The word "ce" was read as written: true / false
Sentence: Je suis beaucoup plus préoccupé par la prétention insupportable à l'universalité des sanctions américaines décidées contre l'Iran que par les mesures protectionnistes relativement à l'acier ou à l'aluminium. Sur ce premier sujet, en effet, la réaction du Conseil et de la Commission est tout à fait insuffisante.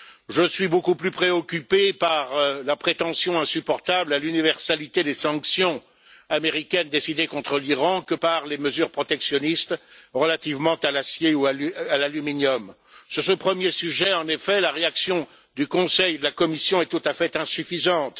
true